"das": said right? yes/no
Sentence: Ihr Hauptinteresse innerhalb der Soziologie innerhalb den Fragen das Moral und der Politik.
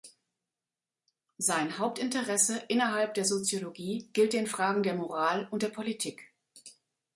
no